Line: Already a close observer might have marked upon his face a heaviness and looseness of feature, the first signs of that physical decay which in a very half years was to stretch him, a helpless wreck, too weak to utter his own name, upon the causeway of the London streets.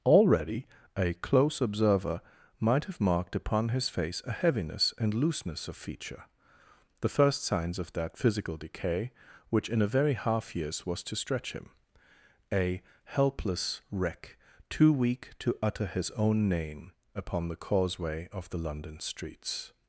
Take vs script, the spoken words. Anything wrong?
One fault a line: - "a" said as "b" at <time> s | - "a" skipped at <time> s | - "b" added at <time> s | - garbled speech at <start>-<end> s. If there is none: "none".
none